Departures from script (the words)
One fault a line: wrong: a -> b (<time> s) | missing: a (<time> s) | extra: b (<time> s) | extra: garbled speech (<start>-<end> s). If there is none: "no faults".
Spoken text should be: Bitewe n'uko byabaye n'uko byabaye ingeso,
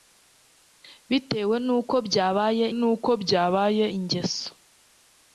no faults